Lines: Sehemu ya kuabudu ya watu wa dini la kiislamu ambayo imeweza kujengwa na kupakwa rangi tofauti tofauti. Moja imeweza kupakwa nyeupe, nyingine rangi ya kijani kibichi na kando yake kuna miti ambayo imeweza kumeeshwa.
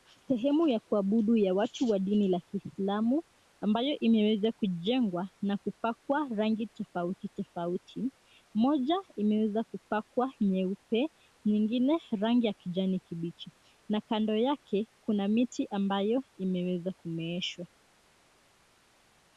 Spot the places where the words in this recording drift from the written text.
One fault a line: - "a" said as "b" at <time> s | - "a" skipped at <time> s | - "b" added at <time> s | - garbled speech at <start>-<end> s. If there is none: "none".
none